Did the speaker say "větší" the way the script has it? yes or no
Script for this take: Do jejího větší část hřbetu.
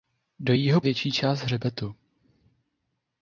yes